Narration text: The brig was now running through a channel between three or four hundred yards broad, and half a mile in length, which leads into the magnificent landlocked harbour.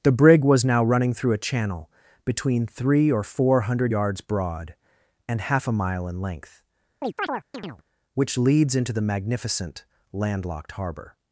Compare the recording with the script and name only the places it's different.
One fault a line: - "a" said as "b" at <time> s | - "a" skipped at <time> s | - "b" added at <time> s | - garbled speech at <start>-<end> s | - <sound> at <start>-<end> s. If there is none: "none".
- chirp at 7.0-7.8 s